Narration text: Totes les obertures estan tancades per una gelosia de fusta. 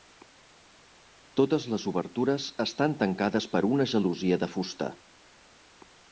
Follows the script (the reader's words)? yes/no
yes